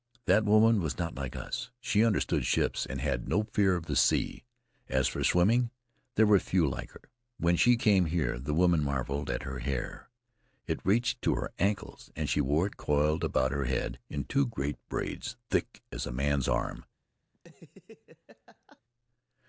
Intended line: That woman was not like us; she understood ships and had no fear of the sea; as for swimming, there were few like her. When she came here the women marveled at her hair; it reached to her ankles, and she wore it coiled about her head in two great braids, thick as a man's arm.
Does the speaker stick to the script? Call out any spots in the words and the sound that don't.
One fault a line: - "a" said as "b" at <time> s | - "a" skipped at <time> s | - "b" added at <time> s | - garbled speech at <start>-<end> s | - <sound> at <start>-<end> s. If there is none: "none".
- laugh at 17.3-18.8 s